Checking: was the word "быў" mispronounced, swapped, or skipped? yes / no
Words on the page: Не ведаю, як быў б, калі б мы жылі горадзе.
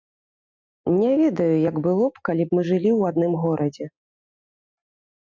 yes